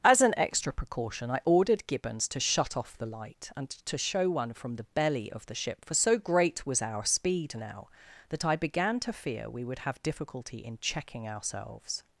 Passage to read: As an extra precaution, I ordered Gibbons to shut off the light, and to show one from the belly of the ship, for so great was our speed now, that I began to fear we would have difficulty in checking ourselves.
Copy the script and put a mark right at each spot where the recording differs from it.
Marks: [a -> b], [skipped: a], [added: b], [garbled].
As an extra precaution, I ordered Gibbons to shut off the light, and to show one from the belly of the ship, for so great was our speed now, that I began to fear we would have difficulty in checking ourselves.